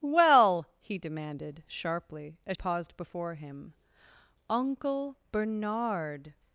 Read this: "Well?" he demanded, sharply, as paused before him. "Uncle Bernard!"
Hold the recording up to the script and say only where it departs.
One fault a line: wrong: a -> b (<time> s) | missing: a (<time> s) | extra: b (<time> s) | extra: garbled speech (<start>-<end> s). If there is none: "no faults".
no faults